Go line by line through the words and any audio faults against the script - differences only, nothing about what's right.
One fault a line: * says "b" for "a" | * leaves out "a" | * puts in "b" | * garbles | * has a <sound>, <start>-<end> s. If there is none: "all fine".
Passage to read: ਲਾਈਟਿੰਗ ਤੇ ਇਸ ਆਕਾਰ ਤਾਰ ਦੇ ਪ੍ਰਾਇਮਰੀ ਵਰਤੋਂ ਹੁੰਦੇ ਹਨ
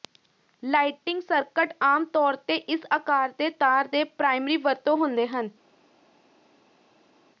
* puts in "ਸਰਕਟ ਆਮ ਤੌਰ"
* puts in "ਦੇ"